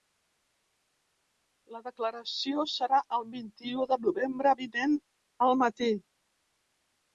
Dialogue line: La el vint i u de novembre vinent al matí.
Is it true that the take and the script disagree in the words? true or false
true